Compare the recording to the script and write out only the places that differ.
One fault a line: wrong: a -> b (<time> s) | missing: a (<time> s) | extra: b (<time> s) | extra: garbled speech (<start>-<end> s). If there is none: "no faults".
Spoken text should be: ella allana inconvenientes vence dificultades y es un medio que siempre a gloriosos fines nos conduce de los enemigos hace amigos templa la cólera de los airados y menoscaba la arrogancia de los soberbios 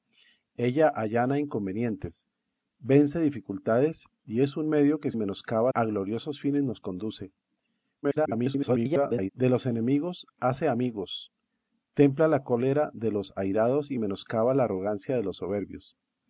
wrong: siempre -> menoscaba (5.2 s)
extra: garbled speech (8.0-9.3 s)